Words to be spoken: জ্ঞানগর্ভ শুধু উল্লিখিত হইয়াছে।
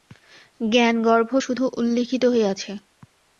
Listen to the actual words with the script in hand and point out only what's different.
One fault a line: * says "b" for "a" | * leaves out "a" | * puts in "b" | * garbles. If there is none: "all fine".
all fine